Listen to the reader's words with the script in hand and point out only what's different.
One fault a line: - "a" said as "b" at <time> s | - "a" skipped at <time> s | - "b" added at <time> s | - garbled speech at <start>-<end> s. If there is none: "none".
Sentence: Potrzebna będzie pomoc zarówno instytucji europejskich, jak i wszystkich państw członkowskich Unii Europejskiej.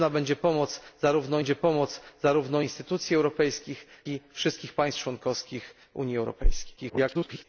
- "będzie pomoc zarówno" added at 1.4 s
- "jak" skipped at 3.9 s
- garbled speech at 6.8-7.4 s